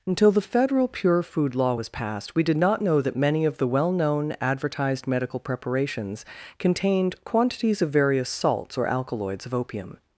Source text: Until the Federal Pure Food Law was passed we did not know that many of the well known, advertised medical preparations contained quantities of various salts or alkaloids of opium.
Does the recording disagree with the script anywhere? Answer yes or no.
no